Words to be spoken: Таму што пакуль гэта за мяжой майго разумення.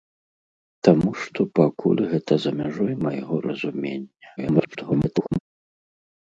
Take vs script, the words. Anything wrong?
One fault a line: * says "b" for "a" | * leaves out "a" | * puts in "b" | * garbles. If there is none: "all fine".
* garbles